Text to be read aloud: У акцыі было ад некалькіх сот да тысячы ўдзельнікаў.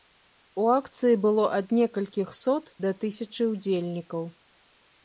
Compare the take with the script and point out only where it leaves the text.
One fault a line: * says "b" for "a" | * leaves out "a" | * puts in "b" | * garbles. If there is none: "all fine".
all fine